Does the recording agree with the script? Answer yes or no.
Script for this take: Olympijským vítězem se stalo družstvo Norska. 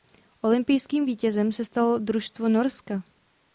yes